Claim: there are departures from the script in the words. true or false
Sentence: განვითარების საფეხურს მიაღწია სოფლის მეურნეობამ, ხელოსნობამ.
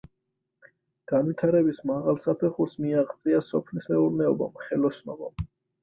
true